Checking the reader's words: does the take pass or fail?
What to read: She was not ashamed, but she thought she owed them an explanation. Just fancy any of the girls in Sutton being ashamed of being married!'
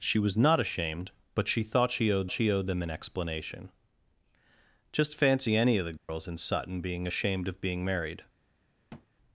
fail